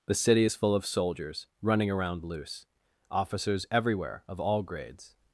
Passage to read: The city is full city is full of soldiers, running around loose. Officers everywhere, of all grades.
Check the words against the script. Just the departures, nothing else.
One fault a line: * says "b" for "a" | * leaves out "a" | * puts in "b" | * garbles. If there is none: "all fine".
* leaves out "city is full"